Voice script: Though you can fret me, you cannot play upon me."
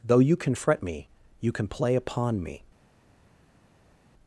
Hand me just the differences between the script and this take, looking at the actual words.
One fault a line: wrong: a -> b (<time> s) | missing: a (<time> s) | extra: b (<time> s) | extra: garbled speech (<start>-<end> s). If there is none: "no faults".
wrong: cannot -> can (1.5 s)